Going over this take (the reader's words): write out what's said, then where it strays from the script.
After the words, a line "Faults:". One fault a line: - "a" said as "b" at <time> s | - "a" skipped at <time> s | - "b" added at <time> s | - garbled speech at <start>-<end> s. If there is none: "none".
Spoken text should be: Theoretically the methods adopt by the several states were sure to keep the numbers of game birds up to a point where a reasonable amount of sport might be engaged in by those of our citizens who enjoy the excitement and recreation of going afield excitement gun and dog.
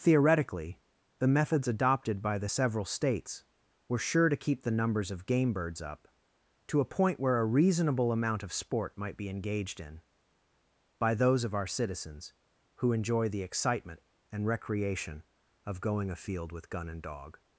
Theoretically the methods adopted by the several states were sure to keep the numbers of game birds up to a point where a reasonable amount of sport might be engaged in by those of our citizens who enjoy the excitement and recreation of going afield with gun and dog.
Faults:
- "adopt" said as "adopted" at 1.7 s
- "excitement" said as "with" at 16.5 s